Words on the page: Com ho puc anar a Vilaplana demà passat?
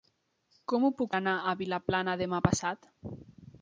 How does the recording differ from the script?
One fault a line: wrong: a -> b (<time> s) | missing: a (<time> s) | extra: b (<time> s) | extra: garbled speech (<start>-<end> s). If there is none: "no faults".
no faults